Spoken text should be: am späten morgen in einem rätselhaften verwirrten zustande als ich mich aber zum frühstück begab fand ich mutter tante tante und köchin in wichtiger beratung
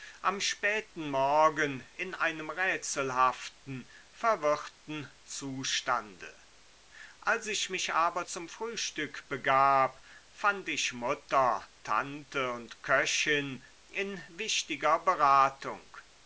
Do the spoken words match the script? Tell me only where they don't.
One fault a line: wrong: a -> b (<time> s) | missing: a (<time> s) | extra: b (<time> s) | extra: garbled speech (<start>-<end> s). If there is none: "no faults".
missing: tante (12.5 s)